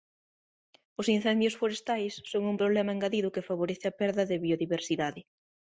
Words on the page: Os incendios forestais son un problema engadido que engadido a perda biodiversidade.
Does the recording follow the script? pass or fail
fail